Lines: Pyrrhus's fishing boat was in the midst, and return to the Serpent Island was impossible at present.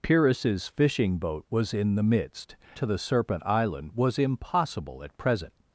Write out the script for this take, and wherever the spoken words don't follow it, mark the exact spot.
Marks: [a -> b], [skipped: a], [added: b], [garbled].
Pyrrhus's fishing boat was in the midst, [skipped: and return] to the Serpent Island was impossible at present.